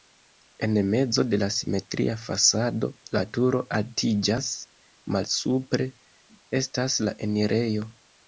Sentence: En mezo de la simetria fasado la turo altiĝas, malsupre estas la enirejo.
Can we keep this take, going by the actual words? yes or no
yes